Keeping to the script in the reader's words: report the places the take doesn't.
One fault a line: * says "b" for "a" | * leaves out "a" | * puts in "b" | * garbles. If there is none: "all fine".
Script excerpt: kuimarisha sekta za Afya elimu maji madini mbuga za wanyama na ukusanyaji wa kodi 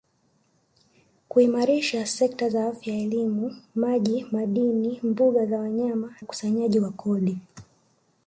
* leaves out "na"